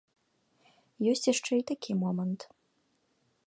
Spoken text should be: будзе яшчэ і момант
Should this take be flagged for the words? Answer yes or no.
yes